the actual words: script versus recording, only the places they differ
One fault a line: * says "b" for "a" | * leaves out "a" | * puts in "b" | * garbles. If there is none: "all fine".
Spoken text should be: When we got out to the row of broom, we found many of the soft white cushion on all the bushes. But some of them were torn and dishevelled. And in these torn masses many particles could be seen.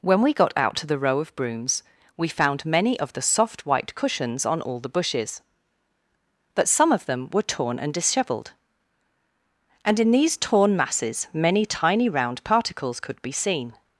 * says "brooms" for "broom"
* says "cushions" for "cushion"
* puts in "tiny round"